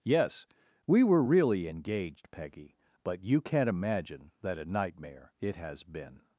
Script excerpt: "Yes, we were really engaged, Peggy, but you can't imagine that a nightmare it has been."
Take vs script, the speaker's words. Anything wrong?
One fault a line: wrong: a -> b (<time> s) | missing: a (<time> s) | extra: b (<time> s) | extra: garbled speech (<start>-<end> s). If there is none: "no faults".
no faults